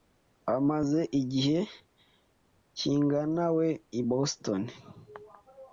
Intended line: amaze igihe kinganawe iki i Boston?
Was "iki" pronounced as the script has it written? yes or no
no